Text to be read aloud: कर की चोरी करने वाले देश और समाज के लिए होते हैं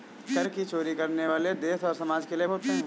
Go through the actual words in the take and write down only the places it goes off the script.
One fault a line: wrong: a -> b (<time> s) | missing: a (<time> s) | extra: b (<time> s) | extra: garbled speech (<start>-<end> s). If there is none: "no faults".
no faults